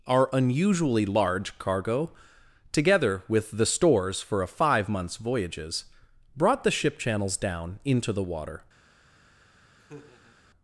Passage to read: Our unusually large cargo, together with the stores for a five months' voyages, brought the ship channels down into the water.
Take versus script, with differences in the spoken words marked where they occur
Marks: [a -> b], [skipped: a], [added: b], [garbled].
Our unusually large cargo, together with the stores for a five months' voyages, brought the ship channels down into the water.